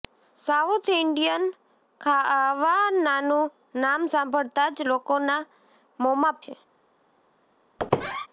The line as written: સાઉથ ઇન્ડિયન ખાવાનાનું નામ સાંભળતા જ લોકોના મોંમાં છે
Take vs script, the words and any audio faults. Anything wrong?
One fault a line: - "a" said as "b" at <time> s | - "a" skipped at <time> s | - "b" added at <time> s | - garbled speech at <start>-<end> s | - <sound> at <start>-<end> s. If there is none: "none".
- squeak at 7.8-8.3 s